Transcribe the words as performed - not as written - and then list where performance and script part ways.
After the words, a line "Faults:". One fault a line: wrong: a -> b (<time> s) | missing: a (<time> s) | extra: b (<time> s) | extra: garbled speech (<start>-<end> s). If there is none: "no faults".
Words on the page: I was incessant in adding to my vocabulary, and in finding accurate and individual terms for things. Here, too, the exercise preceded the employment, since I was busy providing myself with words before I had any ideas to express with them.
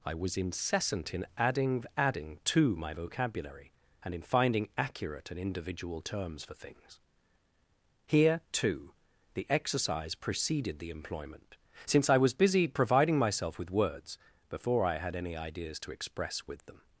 I was incessant in adding adding to my vocabulary, and in finding accurate and individual terms for things. Here, too, the exercise preceded the employment, since I was busy providing myself with words before I had any ideas to express with them.
Faults:
extra: adding (1.9 s)